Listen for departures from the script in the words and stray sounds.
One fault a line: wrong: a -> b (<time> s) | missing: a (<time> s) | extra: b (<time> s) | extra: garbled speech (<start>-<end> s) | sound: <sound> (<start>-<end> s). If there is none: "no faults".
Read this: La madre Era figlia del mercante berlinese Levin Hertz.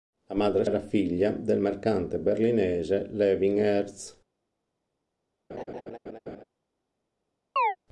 sound: laugh (5.5-6.4 s)
sound: chirp (7.6-7.8 s)